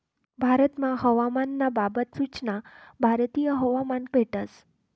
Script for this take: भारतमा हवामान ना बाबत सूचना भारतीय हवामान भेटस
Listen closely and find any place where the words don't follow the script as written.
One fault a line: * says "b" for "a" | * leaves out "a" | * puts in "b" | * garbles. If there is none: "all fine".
all fine